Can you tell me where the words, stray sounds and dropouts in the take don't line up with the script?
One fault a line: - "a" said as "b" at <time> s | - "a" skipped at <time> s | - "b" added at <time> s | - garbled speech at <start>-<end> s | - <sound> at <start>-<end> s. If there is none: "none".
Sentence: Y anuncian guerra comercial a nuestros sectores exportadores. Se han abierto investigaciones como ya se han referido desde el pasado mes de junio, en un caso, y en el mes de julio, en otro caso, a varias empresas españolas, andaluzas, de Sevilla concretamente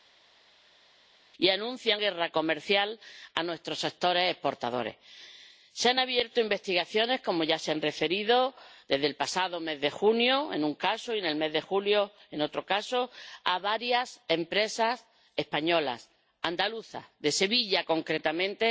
none